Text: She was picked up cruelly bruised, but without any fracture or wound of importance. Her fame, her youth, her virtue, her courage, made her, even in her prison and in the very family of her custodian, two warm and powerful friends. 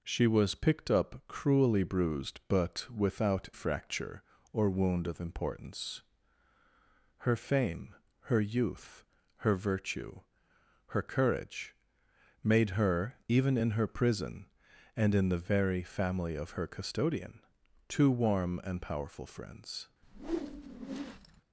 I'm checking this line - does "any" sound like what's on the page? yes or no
no